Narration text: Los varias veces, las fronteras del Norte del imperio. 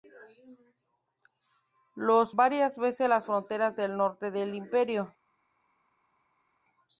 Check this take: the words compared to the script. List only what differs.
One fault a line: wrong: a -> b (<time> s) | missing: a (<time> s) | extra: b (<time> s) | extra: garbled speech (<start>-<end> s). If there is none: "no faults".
no faults